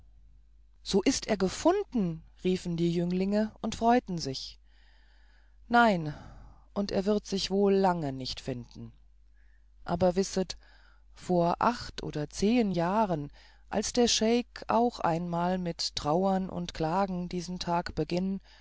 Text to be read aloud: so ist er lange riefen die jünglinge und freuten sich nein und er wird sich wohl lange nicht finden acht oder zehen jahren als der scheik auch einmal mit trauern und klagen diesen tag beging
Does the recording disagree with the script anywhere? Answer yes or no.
yes